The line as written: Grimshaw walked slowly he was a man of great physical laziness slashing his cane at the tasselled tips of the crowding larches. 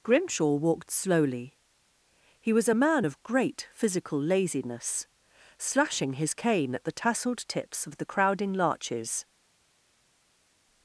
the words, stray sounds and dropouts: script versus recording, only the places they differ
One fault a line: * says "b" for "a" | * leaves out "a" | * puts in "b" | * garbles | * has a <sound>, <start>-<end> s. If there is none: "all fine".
all fine